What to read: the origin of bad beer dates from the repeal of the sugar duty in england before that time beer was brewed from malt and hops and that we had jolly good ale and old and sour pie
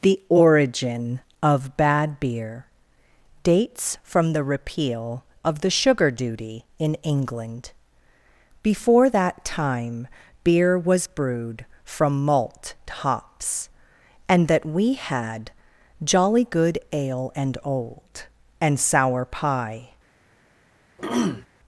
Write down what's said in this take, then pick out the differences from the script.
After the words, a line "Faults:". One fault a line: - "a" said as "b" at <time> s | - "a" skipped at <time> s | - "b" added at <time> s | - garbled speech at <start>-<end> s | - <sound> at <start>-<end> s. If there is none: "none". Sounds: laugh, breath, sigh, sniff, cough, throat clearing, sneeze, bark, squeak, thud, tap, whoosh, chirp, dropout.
the origin of bad beer dates from the repeal of the sugar duty in england before that time beer was brewed from malt hops and that we had jolly good ale and old and sour pie
Faults:
- "and" skipped at 12.7 s
- throat clearing at 21.0-21.5 s